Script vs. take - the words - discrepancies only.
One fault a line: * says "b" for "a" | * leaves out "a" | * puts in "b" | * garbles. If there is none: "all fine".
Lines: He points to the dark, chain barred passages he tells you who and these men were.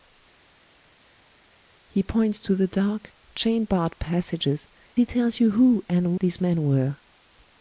all fine